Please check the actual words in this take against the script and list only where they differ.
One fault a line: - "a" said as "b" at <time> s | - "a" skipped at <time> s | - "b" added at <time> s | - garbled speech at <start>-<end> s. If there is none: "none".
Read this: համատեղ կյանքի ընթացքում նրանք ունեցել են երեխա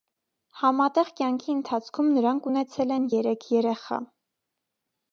- "երեք" added at 3.2 s